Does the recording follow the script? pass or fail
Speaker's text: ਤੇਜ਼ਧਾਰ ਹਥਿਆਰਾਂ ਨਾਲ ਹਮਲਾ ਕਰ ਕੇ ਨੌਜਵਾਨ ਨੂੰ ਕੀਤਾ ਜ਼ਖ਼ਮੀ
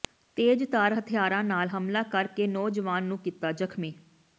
pass